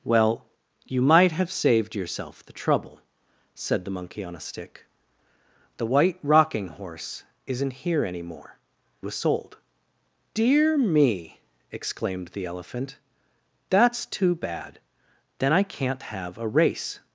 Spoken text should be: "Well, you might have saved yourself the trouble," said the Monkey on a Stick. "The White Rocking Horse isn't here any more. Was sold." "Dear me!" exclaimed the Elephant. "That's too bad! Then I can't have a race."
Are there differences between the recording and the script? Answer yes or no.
no